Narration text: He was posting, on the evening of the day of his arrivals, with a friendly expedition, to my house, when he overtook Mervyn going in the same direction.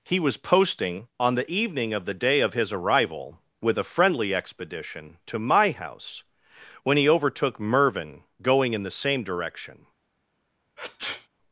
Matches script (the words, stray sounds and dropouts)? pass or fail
fail